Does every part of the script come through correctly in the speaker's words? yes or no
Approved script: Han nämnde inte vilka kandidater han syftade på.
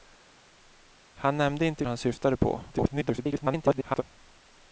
no